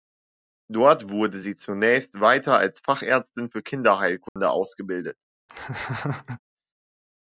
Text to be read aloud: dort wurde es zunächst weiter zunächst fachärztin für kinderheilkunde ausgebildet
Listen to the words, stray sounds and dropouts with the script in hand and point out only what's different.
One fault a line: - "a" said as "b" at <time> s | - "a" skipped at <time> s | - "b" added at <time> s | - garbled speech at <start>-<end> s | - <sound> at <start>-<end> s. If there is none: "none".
- "es" said as "sie" at 1.4 s
- "zunächst" said as "als" at 2.6 s
- dropout at 4.3-4.4 s
- laugh at 5.5-6.4 s